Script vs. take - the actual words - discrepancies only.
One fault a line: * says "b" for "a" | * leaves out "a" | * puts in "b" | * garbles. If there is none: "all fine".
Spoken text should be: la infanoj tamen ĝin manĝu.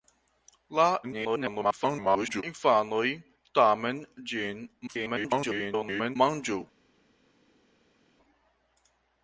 * garbles
* garbles